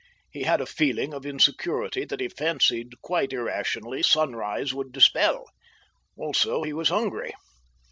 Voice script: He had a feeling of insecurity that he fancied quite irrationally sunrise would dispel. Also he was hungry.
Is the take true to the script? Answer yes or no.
yes